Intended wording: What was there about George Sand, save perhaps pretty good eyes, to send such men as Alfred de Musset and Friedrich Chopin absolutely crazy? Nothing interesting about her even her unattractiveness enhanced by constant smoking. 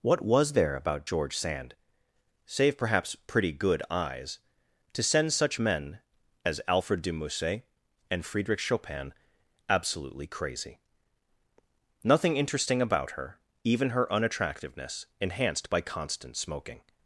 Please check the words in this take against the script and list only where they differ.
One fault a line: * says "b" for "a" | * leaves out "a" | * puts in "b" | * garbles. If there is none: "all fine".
all fine